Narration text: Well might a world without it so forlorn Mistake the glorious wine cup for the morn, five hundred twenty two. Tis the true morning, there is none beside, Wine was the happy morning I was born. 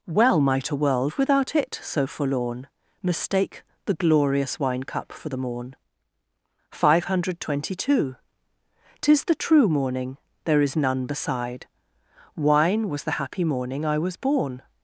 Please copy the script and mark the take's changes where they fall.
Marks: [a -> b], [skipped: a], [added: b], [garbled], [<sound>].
Well might a world without it so forlorn Mistake the glorious wine cup for the morn, five hundred twenty two. Tis the true morning, there is none beside, Wine was the happy morning I was born.